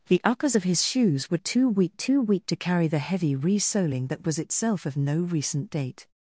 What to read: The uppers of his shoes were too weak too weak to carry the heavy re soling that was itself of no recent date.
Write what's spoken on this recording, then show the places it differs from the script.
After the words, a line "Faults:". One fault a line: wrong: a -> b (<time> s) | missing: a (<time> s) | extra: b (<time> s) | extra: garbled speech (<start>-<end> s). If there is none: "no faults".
The uppers of his shoes were too weak too weak to carry the heavy re soling that was itself of no recent date.
Faults:
no faults